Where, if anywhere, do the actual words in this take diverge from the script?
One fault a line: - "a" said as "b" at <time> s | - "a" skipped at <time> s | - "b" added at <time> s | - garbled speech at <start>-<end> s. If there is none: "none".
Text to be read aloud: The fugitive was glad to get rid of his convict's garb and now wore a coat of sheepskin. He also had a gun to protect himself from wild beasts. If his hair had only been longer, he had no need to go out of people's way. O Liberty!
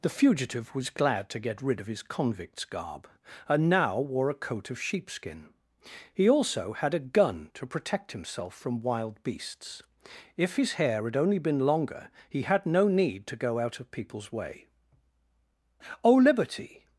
none